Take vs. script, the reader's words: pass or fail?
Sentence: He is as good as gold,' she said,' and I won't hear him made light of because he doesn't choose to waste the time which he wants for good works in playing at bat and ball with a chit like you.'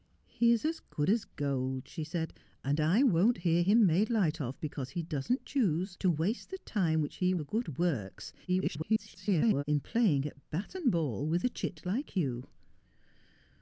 fail